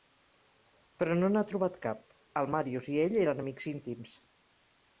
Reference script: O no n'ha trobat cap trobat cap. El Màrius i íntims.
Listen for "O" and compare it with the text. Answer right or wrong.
wrong